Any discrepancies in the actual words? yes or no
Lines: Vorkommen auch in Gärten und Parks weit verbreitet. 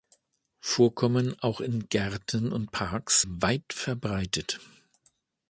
no